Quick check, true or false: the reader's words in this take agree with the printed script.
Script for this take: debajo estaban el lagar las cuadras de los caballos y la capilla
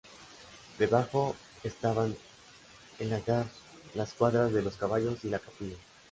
true